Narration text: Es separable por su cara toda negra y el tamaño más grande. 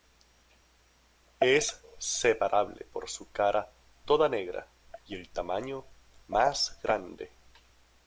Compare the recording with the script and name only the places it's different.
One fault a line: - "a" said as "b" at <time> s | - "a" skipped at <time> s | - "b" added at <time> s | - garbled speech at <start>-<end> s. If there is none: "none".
none